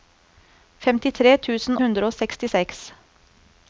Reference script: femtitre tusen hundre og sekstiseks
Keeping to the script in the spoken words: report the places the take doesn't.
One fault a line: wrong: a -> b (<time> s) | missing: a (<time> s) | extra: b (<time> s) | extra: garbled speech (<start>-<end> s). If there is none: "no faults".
no faults